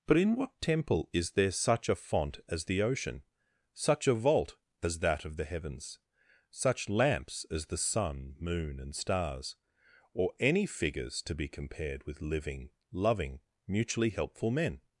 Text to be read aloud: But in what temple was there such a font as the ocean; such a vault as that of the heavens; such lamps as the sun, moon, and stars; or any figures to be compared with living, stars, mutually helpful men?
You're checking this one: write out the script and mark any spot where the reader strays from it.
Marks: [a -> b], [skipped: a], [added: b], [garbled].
But in what temple [was -> is] there such a font as the ocean; such a vault as that of the heavens; such lamps as the sun, moon, and stars; or any figures to be compared with living, [stars, -> loving] mutually helpful men?